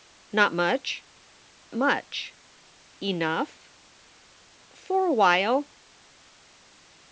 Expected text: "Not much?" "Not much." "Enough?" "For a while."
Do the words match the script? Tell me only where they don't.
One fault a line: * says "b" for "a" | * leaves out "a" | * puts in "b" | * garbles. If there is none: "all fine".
* leaves out "Not"